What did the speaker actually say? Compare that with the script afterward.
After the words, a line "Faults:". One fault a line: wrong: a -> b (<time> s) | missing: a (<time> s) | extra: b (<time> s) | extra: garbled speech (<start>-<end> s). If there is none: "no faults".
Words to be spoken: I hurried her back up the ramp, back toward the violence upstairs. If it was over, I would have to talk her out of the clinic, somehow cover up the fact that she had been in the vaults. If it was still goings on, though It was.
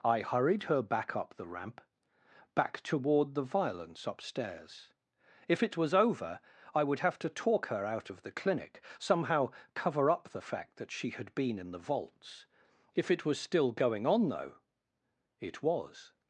I hurried her back up the ramp, back toward the violence upstairs. If it was over, I would have to talk her out of the clinic, somehow cover up the fact that she had been in the vaults. If it was still going on, though It was.
Faults:
wrong: goings -> going (13.7 s)